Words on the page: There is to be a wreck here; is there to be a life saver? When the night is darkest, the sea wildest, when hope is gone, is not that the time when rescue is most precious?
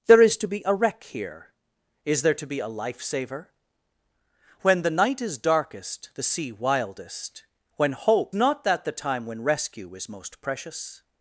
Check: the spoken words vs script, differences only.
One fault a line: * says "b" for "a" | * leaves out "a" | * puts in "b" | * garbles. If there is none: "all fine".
* leaves out "is gone is"